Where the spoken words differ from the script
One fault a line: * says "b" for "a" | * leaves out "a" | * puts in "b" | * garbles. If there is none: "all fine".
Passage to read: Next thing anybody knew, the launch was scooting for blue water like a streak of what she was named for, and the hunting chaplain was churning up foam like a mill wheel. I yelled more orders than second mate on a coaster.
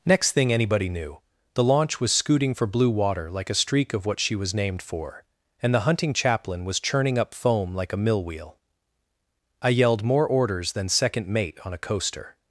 all fine